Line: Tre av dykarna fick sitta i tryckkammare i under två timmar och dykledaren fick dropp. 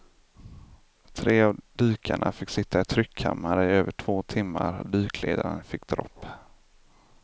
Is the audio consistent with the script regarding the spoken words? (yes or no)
no